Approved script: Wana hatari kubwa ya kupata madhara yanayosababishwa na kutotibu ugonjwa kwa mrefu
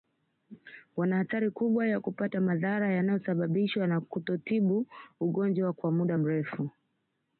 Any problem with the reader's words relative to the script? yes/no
yes